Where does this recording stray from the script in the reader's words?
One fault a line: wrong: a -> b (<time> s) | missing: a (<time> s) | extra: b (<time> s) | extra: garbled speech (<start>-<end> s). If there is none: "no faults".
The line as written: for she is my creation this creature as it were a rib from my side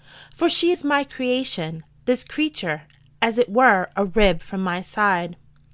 no faults